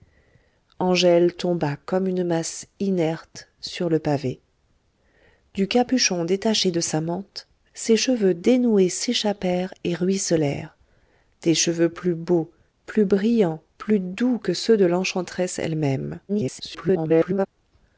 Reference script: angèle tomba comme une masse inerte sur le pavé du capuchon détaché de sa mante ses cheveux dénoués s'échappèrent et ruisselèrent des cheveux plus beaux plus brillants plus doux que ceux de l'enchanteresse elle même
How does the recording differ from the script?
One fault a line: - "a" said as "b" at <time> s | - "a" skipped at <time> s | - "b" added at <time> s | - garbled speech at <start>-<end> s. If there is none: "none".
- garbled speech at 16.3-17.5 s